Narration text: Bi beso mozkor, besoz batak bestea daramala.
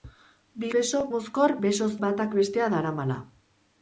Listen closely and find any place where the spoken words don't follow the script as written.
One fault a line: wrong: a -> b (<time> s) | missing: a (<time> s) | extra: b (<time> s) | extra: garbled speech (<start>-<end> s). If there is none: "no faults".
no faults